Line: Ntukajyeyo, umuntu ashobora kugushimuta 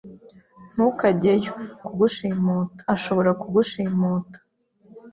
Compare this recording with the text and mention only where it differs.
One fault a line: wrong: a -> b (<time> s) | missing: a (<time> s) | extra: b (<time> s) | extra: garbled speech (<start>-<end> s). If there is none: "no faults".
wrong: umuntu -> kugushimuta (1.9 s)